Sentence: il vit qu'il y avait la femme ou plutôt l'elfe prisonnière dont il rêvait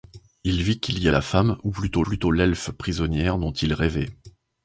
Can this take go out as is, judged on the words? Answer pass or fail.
fail